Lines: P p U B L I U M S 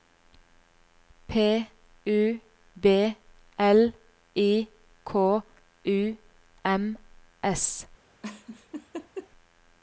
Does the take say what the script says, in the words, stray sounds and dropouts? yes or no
no